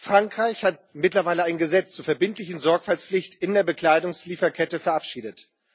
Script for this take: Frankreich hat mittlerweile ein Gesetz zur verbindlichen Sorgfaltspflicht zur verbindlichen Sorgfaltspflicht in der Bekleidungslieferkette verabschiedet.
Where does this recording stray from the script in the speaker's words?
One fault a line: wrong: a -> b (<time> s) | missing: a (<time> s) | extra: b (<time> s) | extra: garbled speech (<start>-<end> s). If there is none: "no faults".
missing: zur verbindlichen Sorgfaltspflicht (3.4 s)